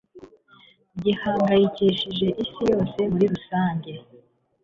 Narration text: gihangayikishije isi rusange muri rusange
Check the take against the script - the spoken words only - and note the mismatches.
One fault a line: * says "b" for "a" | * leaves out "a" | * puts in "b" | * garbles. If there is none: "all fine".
* says "yose" for "rusange"